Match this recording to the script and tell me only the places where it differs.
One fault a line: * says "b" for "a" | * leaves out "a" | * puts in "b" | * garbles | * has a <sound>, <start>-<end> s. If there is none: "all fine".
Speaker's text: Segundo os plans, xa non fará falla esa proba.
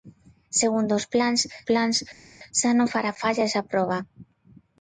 * puts in "plans"